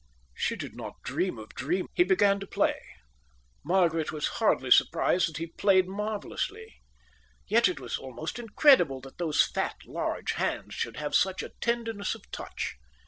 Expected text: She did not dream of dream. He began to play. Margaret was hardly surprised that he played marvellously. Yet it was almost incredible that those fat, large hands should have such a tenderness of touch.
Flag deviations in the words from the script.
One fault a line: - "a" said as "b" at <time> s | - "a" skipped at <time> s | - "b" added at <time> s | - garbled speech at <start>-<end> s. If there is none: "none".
none